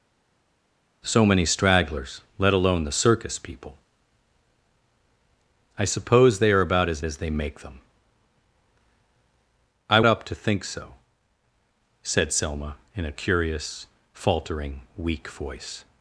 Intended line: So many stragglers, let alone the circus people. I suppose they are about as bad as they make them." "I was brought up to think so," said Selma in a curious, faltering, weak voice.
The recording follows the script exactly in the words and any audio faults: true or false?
false